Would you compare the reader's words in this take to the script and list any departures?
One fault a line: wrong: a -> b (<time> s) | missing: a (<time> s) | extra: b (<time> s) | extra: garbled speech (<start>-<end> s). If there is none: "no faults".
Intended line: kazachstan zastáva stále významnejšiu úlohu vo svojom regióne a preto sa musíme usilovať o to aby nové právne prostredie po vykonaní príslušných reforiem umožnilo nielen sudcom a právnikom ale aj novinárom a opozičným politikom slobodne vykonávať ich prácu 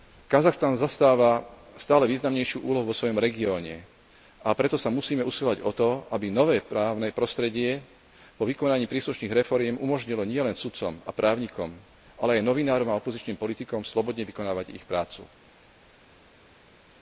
no faults